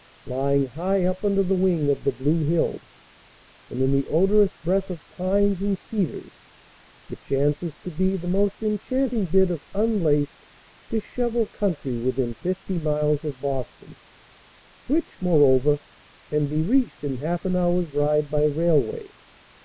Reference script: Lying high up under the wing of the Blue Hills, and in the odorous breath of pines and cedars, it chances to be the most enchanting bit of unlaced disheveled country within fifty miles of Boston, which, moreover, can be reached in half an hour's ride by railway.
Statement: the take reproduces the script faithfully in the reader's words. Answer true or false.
true